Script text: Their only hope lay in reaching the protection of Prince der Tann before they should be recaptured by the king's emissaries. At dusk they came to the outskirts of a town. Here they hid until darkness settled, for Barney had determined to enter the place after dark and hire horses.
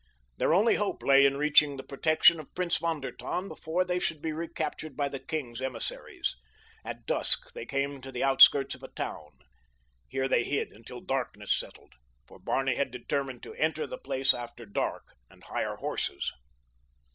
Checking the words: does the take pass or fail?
fail